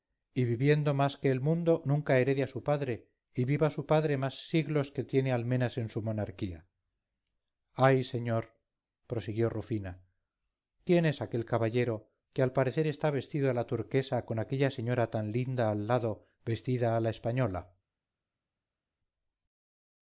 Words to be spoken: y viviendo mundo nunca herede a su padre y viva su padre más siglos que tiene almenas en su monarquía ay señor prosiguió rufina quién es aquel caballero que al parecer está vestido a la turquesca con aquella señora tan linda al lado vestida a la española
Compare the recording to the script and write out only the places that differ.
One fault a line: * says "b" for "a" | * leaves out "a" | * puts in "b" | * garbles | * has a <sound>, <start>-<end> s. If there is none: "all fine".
* puts in "más que el"